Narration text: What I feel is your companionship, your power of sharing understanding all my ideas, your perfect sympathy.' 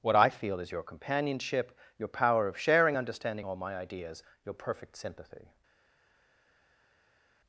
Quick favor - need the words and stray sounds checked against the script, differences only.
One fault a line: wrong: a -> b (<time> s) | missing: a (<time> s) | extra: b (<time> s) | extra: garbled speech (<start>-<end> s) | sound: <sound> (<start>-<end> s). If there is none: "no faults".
no faults